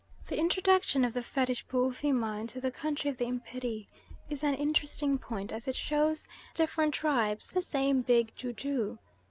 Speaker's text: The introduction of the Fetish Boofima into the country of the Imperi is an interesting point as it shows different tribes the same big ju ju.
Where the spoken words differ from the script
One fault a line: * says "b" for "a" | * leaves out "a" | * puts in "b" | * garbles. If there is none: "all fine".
all fine